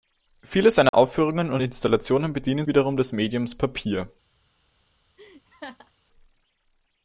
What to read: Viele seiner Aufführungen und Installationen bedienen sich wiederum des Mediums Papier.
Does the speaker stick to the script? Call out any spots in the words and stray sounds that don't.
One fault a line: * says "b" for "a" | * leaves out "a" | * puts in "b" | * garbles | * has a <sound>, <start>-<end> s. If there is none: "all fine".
* has a dropout, 0.9-0.9 s
* leaves out "sich"
* has a laugh, 5.2-5.9 s